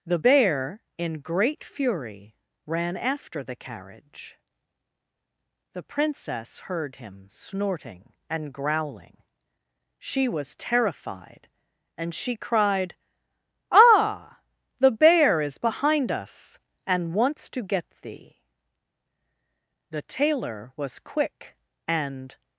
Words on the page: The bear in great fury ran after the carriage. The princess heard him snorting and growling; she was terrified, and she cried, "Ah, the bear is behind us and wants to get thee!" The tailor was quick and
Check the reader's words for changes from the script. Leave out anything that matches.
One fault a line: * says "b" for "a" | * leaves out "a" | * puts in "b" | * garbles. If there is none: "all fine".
all fine